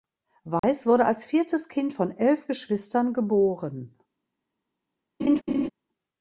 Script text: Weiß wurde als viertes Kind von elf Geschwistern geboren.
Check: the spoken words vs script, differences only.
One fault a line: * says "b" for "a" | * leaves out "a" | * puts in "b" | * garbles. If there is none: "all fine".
all fine